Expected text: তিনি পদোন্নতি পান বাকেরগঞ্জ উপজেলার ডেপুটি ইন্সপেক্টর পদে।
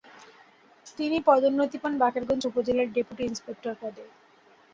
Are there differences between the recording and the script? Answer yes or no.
no